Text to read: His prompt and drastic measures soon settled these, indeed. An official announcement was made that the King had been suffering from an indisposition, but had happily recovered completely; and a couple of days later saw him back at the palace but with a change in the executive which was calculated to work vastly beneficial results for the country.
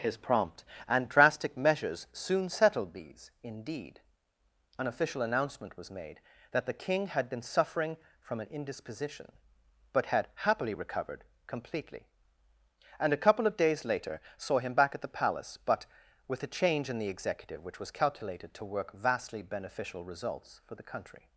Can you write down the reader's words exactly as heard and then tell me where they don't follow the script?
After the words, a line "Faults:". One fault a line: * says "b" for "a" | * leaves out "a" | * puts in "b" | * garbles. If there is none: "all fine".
His prompt and drastic measures soon settled these, indeed. An official announcement was made that the King had been suffering from an indisposition, but had happily recovered completely; and a couple of days later saw him back at the palace but with a change in the executive which was calculated to work vastly beneficial results for the country.
Faults:
all fine